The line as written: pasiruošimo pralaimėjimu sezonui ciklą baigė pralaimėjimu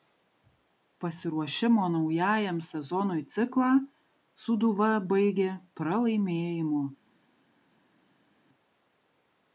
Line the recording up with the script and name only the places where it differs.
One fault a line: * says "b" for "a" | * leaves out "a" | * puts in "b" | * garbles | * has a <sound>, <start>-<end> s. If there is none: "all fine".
* says "naujajam" for "pralaimėjimu"
* puts in "sūduva"